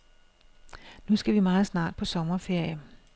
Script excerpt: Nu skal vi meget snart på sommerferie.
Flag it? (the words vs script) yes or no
no